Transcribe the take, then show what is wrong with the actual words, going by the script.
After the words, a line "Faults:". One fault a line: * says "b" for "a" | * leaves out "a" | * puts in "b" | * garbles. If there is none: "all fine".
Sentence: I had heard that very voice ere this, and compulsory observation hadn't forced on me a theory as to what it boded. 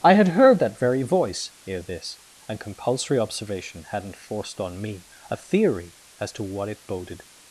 I had heard that very voice ere this, and compulsory observation hadn't forced on me a theory as to what it boded.
Faults:
all fine